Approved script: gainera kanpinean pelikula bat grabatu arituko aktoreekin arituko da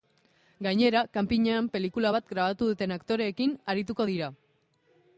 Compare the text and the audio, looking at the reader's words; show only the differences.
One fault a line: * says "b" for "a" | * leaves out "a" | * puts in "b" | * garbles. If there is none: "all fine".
* says "duten" for "arituko"
* says "dira" for "da"